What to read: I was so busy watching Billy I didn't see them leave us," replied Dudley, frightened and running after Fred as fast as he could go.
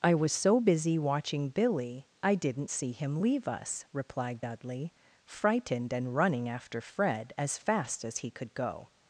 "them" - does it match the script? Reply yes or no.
no